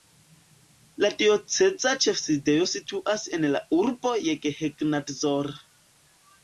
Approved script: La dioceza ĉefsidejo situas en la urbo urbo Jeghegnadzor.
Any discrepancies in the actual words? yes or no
yes